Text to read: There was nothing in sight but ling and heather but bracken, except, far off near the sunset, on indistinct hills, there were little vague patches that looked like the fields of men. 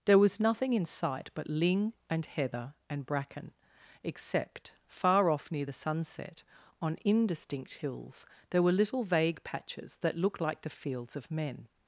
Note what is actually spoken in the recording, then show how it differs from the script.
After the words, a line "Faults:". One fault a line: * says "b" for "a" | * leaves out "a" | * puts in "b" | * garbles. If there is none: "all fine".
There was nothing in sight but ling and heather and bracken, except, far off near the sunset, on indistinct hills, there were little vague patches that looked like the fields of men.
Faults:
* says "and" for "but"